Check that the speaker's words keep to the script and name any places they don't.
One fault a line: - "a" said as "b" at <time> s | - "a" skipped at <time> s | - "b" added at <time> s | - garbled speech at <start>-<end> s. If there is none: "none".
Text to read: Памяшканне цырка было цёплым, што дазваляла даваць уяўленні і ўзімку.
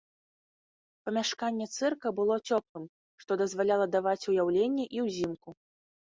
none